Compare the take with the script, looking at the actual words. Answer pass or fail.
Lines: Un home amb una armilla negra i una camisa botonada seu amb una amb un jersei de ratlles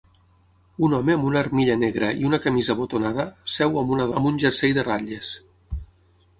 pass